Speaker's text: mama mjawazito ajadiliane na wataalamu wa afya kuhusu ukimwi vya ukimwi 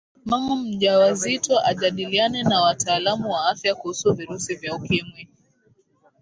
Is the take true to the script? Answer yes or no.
no